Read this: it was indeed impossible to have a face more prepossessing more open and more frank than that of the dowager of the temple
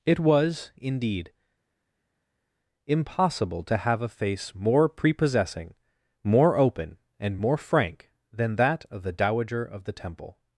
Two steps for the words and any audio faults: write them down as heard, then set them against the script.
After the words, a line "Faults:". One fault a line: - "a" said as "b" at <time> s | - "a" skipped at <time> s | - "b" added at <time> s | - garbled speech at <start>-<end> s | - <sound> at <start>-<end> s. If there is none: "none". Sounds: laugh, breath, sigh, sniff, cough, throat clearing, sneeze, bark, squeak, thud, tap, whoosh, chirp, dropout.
it was indeed impossible to have a face more prepossessing more open and more frank than that of the dowager of the temple
Faults:
none